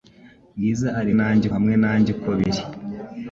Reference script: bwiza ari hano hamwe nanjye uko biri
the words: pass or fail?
fail